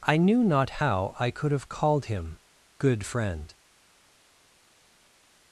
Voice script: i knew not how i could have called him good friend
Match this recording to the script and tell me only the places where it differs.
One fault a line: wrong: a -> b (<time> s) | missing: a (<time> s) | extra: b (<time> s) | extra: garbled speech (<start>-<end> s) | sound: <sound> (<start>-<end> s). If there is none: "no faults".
no faults